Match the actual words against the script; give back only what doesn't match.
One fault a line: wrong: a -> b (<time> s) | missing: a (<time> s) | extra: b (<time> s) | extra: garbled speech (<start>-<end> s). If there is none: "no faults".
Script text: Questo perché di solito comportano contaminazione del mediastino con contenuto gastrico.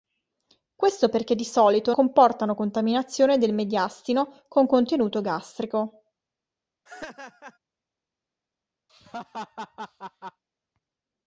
no faults